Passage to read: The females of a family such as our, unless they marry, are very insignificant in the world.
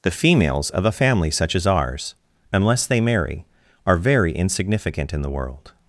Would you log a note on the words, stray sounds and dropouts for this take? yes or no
yes